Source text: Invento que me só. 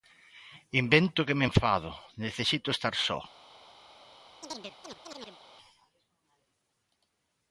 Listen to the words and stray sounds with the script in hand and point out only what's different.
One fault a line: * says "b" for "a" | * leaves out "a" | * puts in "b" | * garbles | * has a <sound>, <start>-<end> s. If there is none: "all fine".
* puts in "enfado necesito estar"
* has a chirp, 4.4-5.4 s